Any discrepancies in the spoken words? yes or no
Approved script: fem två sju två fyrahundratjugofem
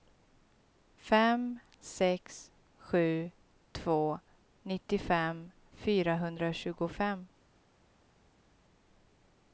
yes